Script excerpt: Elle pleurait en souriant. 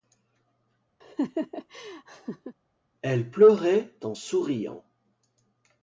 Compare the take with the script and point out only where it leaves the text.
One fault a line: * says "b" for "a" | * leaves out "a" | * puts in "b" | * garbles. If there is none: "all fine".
all fine